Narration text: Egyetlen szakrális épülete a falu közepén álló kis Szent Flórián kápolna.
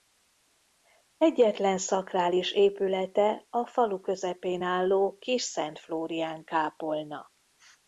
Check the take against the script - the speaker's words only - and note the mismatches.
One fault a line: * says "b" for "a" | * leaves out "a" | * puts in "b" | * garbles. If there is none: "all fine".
all fine